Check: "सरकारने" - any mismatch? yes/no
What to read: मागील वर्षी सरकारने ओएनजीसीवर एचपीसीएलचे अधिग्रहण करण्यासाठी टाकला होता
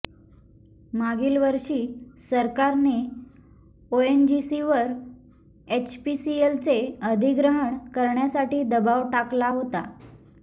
no